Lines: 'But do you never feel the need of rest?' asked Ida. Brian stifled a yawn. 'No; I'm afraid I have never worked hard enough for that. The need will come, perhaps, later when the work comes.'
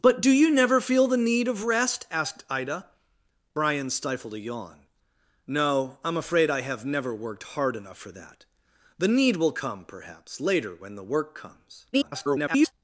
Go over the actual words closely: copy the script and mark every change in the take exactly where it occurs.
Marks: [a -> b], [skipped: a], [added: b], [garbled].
'But do you never feel the need of rest?' asked Ida. Brian stifled a yawn. 'No; I'm afraid I have never worked hard enough for that. The need will come, perhaps, later when the work comes.' [garbled]